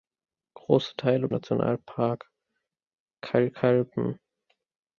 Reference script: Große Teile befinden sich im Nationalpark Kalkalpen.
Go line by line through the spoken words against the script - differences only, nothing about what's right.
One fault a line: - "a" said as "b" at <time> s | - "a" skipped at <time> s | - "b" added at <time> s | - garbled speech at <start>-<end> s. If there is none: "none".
- "befinden sich im" skipped at 1.3 s